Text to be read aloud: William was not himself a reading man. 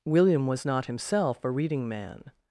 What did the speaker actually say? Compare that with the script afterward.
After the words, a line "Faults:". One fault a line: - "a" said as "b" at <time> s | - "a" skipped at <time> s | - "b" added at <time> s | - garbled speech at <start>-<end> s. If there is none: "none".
William was not himself a reading man.
Faults:
none